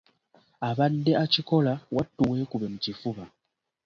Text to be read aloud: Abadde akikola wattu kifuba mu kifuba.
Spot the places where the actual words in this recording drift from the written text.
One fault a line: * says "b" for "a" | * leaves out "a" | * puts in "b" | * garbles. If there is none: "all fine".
* says "weekube" for "kifuba"